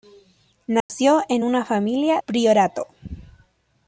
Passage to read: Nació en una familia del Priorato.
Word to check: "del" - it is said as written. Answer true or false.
false